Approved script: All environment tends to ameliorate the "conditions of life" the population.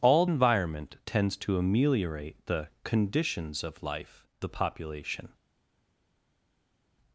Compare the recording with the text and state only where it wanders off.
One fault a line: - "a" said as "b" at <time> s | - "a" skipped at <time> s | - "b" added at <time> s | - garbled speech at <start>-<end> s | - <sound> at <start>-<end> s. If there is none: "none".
none